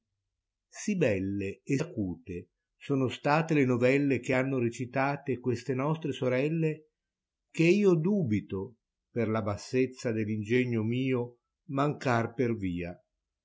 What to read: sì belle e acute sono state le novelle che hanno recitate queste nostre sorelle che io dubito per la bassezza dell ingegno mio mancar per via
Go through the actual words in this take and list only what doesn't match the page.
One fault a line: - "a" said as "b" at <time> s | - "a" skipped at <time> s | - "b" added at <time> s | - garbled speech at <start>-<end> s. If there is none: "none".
none